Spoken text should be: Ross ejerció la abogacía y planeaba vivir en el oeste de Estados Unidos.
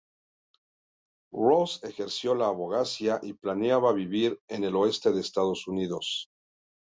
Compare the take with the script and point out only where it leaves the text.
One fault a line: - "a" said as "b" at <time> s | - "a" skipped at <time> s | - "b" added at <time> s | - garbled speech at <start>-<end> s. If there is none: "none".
none